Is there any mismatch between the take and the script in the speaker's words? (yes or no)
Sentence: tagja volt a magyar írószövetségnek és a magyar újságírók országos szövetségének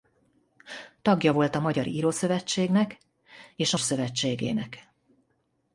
yes